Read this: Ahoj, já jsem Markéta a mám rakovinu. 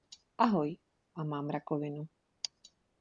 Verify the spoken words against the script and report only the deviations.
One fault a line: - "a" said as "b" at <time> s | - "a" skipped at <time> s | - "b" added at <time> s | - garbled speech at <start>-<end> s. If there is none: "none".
- "já jsem Markéta" skipped at 0.8 s